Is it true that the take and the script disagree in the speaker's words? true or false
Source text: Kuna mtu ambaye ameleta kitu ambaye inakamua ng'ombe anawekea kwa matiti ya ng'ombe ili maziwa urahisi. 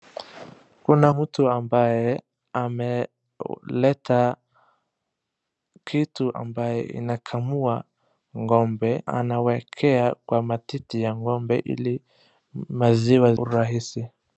false